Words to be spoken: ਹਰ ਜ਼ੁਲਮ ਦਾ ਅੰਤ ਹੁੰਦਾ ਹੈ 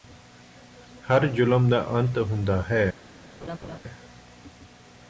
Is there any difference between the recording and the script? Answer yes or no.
no